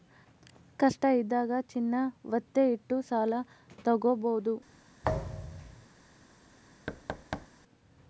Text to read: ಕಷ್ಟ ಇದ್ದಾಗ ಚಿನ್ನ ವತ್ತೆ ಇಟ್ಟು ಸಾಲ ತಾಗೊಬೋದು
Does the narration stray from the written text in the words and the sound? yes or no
yes